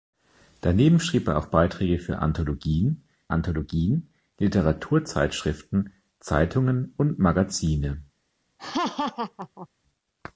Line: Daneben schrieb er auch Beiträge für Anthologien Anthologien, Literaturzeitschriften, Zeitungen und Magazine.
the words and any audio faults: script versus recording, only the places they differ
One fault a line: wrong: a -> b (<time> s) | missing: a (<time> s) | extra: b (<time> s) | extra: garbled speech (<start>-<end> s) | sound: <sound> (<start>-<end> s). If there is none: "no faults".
sound: laugh (8.6-9.7 s)